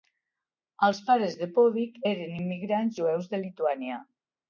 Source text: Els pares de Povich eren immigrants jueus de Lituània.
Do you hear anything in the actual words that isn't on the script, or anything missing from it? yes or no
no